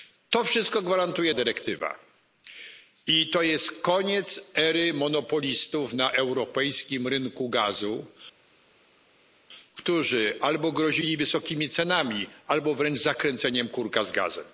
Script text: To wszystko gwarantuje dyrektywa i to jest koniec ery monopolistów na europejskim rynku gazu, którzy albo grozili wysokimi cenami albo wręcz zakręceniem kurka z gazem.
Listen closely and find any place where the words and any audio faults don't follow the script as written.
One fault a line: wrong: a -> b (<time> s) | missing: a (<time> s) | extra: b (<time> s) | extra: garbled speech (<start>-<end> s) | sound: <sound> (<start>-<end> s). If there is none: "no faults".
no faults